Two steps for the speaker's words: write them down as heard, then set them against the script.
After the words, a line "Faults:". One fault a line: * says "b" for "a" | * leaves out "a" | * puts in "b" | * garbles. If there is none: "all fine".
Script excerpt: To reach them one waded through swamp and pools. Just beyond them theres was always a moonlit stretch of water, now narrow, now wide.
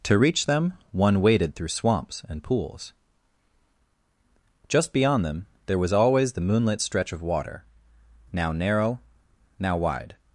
To reach them one waded through swamps and pools. Just beyond them there was always the moonlit stretch of water, now narrow, now wide.
Faults:
* says "swamps" for "swamp"
* says "there" for "theres"
* says "the" for "a"